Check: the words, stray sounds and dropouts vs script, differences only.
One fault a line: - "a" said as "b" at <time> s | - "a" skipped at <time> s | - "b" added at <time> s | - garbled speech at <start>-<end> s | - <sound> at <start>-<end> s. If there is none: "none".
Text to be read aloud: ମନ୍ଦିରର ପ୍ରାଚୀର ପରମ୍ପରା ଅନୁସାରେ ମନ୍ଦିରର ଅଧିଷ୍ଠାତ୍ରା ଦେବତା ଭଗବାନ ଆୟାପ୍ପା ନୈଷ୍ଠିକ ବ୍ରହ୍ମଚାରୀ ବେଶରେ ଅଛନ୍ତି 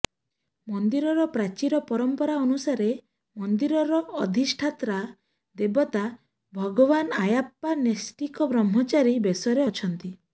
none